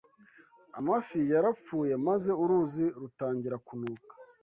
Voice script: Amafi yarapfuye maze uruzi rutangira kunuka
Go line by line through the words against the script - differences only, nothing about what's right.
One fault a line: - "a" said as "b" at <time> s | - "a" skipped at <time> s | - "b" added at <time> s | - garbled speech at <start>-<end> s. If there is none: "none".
none